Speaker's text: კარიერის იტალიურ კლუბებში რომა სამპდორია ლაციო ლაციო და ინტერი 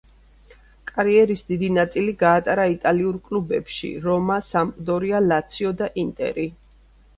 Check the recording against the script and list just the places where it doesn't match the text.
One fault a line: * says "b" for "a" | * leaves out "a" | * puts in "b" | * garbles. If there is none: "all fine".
* puts in "დიდი ნაწილი გაატარა"
* leaves out "ლაციო"